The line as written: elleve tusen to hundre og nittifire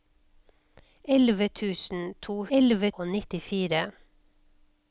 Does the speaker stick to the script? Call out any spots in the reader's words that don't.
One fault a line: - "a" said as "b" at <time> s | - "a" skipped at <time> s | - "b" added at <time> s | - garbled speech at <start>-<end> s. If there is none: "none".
- "hundre" said as "elleve" at 2.6 s